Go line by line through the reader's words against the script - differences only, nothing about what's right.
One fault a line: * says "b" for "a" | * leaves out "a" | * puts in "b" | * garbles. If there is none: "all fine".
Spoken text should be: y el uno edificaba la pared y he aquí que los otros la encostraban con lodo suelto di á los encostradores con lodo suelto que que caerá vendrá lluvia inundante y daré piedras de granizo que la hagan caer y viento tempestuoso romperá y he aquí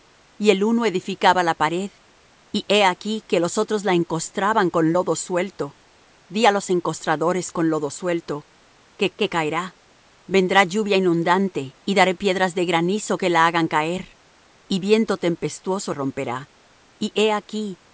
all fine